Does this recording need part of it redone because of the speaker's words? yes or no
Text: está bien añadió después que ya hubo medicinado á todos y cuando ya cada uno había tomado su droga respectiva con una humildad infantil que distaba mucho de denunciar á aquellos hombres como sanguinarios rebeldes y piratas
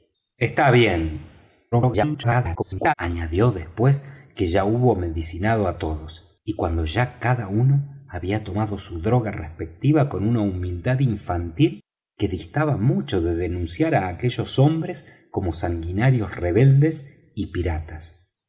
yes